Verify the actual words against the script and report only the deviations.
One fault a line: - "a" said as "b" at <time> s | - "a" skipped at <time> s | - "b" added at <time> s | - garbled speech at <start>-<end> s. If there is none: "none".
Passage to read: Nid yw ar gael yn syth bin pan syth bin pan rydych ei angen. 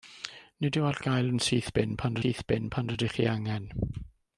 none